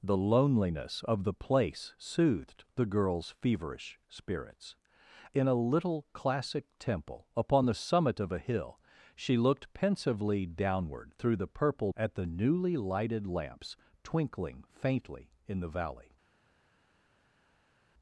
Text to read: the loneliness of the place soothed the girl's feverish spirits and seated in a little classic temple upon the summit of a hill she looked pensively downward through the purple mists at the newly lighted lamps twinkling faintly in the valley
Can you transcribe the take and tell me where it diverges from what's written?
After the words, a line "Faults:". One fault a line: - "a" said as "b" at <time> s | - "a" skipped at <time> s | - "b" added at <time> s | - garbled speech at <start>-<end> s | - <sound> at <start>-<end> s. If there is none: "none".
the loneliness of the place soothed the girl's feverish spirits in a little classic temple upon the summit of a hill she looked pensively downward through the purple at the newly lighted lamps twinkling faintly in the valley
Faults:
- "and seated" skipped at 4.8 s
- "mists" skipped at 11.9 s